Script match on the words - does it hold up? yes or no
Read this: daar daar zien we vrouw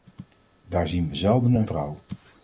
no